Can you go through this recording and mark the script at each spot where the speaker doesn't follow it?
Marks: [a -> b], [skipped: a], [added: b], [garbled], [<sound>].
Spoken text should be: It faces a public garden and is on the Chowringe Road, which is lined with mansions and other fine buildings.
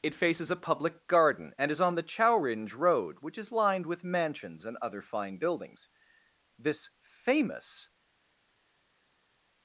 It faces a public garden and is on the Chowringe Road, which is lined with mansions and other fine buildings. [added: This famous]